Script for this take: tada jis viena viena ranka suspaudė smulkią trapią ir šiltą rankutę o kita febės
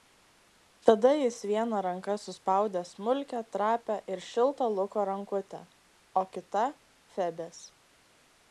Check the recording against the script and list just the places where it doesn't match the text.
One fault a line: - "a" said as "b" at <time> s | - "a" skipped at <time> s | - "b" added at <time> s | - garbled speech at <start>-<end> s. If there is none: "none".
- "viena" skipped at 1.8 s
- "luko" added at 4.8 s